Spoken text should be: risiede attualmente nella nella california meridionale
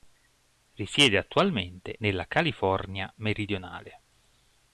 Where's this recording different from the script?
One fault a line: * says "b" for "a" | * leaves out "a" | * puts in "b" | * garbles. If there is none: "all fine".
* leaves out "nella"